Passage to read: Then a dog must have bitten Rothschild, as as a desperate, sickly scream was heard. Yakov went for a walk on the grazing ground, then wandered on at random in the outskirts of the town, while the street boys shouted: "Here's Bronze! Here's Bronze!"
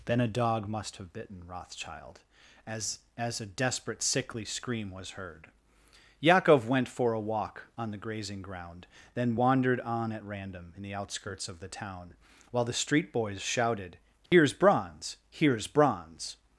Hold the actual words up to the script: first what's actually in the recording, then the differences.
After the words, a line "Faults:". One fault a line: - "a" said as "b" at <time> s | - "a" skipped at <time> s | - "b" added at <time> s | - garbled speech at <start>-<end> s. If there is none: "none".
Then a dog must have bitten Rothschild, as as a desperate, sickly scream was heard. Yakov went for a walk on the grazing ground, then wandered on at random in the outskirts of the town, while the street boys shouted: "Here's Bronze! Here's Bronze!"
Faults:
none